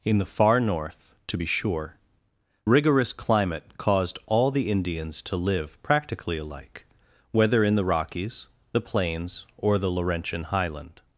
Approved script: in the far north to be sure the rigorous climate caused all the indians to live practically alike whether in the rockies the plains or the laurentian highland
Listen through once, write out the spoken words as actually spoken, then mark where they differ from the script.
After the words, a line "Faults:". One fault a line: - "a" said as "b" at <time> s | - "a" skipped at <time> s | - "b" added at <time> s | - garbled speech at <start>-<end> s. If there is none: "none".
in the far north to be sure rigorous climate caused all the indians to live practically alike whether in the rockies the plains or the laurentian highland
Faults:
- "the" skipped at 2.0 s